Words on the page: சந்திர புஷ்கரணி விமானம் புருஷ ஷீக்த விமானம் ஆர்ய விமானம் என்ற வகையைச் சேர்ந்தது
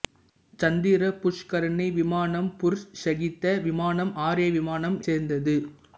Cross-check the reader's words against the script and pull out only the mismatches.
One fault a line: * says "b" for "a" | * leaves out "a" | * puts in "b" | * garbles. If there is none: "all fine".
* leaves out "என்ற வகையைச்"